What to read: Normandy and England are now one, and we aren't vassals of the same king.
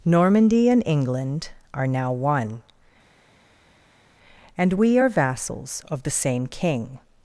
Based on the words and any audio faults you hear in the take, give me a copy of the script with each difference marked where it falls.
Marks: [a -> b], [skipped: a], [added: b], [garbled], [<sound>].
Normandy and England are now one, and we [aren't -> are] vassals of the same king.